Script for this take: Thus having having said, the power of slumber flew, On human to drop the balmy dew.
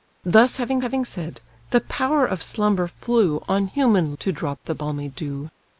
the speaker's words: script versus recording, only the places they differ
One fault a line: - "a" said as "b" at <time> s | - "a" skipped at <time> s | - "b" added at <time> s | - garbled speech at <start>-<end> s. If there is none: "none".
none